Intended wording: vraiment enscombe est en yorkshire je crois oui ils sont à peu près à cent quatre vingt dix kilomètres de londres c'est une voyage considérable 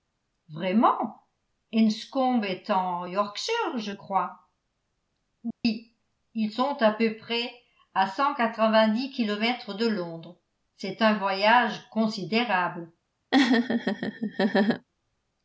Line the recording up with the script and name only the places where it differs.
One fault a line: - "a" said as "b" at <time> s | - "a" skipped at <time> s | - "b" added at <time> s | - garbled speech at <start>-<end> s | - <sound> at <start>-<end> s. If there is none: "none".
- dropout at 5.5-5.6 s
- "une" said as "un" at 11.0 s
- laugh at 13.3-14.9 s